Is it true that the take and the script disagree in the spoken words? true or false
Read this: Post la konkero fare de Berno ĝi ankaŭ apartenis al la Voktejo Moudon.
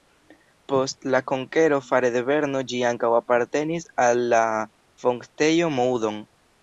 false